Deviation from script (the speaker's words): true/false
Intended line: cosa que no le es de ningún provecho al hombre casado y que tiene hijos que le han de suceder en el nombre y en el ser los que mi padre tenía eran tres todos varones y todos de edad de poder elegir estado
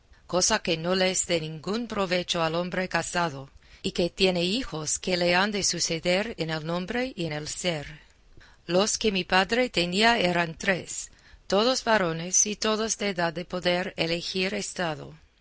false